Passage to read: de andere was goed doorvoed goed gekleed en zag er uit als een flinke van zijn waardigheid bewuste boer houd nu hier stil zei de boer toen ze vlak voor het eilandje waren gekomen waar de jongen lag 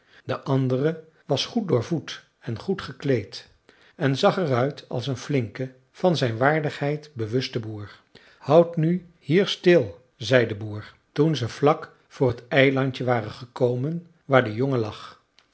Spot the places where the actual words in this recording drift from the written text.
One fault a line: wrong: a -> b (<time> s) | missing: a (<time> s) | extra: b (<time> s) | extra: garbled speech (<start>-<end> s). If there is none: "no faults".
extra: en (2.4 s)